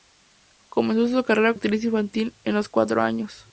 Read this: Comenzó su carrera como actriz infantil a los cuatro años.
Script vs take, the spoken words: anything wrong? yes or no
yes